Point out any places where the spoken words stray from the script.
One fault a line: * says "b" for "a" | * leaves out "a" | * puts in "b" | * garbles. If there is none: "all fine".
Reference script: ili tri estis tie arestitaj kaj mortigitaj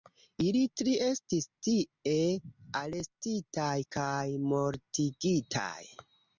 all fine